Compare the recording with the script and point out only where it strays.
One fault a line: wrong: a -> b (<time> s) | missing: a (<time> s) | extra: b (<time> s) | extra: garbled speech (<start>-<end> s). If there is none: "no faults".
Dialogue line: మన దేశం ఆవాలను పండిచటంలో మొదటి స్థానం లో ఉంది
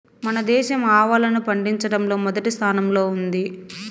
no faults